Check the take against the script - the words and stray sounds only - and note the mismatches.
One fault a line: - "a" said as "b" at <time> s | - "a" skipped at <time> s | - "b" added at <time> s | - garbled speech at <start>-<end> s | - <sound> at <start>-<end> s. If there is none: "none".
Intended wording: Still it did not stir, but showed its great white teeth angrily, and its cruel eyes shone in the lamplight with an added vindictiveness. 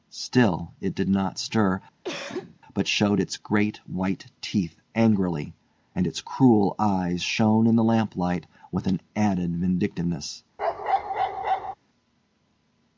- cough at 2.0-2.6 s
- bark at 10.6-11.7 s